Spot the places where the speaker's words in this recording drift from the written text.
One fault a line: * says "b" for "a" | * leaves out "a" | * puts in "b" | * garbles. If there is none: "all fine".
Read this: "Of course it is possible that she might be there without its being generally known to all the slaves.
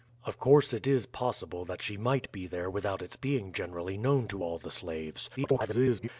* garbles